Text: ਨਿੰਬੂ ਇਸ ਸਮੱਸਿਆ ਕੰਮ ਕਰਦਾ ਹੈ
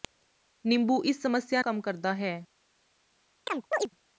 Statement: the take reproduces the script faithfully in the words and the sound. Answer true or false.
false